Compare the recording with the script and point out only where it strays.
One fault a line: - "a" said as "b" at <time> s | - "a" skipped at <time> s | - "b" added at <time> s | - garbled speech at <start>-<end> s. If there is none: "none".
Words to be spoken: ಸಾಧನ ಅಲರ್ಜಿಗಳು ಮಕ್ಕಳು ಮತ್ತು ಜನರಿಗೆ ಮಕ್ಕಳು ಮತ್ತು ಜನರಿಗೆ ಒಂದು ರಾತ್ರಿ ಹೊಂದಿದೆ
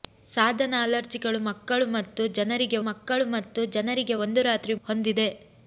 none